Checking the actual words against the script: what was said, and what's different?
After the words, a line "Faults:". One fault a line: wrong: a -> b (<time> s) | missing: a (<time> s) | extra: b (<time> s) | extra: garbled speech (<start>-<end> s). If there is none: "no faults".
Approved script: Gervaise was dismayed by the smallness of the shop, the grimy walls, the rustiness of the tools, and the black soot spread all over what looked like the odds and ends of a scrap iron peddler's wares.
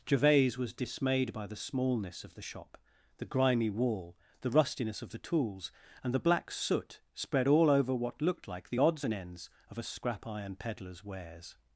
Gervaise was dismayed by the smallness of the shop, the grimy wall, the rustiness of the tools, and the black soot spread all over what looked like the odds and ends of a scrap iron peddler's wares.
Faults:
wrong: walls -> wall (3.7 s)